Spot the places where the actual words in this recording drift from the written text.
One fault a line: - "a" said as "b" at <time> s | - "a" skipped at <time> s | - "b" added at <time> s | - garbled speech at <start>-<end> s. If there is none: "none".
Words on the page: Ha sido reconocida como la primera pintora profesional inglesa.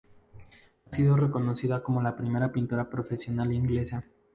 none